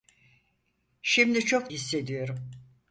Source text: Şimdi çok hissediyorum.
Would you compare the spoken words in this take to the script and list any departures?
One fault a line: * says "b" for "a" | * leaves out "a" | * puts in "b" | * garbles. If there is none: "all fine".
all fine